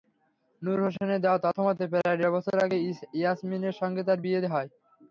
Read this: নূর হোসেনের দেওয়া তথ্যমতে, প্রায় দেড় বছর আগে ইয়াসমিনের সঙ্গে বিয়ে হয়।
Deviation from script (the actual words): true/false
true